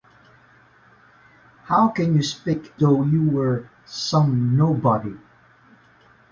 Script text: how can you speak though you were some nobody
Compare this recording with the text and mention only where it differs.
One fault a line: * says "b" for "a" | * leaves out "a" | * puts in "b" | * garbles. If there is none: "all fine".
all fine